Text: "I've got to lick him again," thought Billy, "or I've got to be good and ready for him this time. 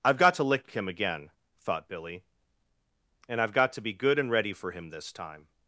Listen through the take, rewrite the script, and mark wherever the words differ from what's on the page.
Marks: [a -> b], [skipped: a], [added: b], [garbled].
"I've got to lick him again," thought Billy, ["or -> and] I've got to be good and ready for him this time.